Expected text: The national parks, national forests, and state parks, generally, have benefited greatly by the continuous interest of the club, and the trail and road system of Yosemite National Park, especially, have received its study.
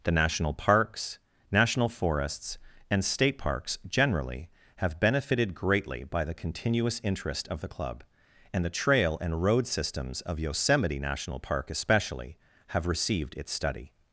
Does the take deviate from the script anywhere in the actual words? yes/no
yes